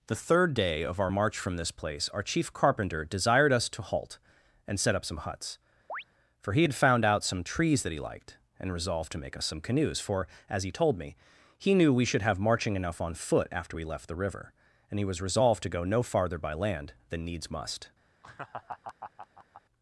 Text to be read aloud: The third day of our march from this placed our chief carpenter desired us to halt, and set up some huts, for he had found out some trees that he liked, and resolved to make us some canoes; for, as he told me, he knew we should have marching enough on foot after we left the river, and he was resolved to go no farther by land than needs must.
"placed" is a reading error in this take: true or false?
true